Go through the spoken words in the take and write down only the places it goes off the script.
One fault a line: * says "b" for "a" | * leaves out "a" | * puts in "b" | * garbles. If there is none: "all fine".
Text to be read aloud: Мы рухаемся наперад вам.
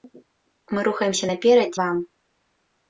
all fine